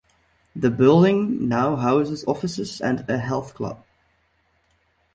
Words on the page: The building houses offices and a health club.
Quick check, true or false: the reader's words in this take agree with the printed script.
false